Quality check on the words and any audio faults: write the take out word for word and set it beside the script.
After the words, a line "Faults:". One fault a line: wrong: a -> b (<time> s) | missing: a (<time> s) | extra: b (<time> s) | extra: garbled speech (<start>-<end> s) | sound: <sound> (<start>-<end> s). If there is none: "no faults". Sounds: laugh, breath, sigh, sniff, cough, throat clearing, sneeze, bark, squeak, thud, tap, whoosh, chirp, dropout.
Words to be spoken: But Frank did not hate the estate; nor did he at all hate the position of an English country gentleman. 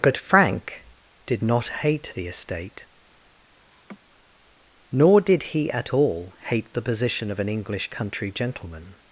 But Frank did not hate the estate; nor did he at all hate the position of an English country gentleman.
Faults:
sound: laugh (3.7-4.0 s)